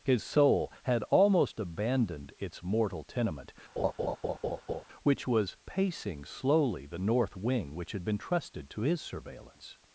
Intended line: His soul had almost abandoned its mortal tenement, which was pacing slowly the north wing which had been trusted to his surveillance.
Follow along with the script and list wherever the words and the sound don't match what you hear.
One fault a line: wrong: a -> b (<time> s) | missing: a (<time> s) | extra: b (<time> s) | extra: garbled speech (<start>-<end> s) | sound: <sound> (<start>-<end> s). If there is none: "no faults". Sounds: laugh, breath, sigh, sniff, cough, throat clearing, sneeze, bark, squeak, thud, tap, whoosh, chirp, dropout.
sound: laugh (3.8-4.8 s)